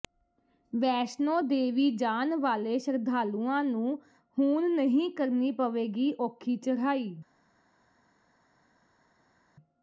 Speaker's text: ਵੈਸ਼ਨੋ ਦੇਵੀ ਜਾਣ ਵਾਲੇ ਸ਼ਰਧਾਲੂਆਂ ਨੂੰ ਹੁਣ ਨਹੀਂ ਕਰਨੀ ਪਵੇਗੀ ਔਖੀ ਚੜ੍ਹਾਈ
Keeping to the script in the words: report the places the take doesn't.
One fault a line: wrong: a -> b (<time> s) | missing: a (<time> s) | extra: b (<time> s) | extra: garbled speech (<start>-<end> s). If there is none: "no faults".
no faults